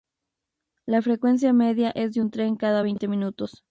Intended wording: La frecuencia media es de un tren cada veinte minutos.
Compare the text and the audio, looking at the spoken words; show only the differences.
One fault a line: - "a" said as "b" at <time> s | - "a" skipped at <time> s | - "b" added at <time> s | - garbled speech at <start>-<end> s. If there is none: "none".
none